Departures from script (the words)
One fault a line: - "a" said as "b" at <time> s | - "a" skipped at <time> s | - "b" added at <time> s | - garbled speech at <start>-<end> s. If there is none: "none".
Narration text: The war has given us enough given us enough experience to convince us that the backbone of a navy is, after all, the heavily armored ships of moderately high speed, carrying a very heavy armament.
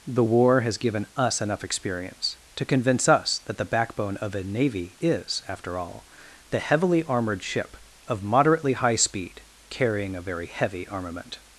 - "given us enough" skipped at 1.6 s
- "ships" said as "ship" at 7.4 s